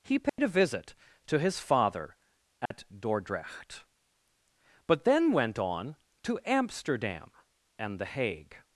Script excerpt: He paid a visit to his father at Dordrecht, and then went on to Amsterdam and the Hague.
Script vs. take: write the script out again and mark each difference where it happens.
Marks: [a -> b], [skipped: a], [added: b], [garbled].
He paid a visit to his father at Dordrecht, [and -> but] then went on to Amsterdam and the Hague.